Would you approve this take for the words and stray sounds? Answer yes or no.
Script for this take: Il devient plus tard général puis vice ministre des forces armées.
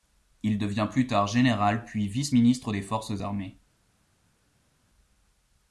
yes